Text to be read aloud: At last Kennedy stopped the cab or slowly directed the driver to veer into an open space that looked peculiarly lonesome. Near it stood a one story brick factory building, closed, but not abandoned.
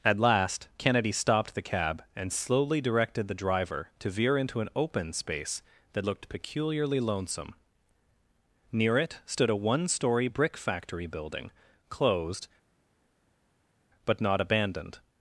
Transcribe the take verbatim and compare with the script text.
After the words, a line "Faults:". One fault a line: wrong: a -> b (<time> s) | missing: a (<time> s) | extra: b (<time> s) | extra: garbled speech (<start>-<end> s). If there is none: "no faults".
At last Kennedy stopped the cab and slowly directed the driver to veer into an open space that looked peculiarly lonesome. Near it stood a one story brick factory building, closed, but not abandoned.
Faults:
wrong: or -> and (2.1 s)